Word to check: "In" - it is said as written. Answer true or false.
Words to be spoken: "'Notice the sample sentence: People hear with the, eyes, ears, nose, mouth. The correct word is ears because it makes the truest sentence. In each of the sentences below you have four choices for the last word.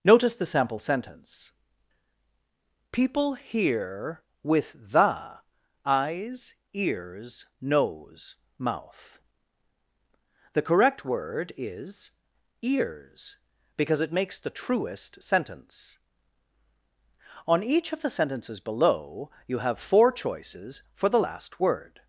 false